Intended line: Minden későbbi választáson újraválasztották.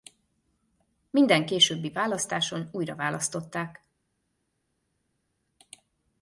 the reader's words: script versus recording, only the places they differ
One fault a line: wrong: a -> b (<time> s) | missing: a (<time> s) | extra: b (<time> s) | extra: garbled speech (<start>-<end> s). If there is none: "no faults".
no faults